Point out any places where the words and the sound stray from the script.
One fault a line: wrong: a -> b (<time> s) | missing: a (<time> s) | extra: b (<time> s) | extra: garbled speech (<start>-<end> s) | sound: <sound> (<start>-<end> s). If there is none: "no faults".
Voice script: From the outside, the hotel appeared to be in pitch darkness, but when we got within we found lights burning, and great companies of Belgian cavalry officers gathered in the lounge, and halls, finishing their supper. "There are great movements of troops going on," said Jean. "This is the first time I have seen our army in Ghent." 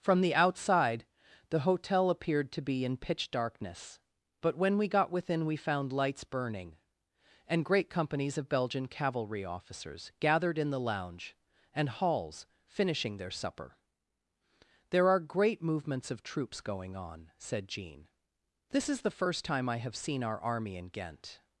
no faults